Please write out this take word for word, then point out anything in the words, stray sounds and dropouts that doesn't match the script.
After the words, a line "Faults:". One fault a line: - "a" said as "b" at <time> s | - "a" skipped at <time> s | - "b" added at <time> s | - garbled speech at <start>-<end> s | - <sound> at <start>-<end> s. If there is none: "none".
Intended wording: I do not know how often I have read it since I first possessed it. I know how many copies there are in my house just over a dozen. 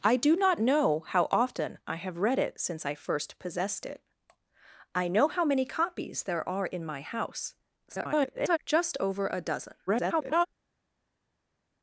I do not know how often I have read it since I first possessed it. I know how many copies there are in my house [garbled] just over a dozen. [garbled]
Faults:
- garbled speech at 7.9-8.6 s
- garbled speech at 9.9-10.5 s